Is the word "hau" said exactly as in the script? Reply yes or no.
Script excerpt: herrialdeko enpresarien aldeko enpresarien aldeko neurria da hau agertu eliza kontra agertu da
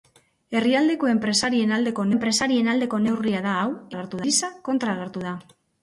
yes